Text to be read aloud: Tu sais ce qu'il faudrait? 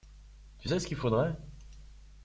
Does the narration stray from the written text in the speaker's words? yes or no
no